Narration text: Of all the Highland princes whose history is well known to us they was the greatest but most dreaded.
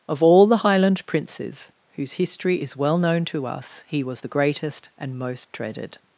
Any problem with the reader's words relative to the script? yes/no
yes